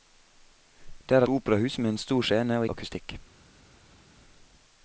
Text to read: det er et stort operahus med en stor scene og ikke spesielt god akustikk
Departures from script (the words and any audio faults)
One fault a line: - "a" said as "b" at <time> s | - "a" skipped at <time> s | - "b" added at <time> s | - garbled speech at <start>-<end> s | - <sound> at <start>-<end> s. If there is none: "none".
- "et stort" skipped at 1.2 s
- "ikke spesielt god" skipped at 2.6 s